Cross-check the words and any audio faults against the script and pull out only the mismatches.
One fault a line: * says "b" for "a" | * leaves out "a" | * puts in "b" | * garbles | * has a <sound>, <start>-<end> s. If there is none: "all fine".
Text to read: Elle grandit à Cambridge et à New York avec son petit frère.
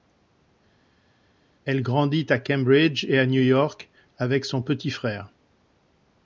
all fine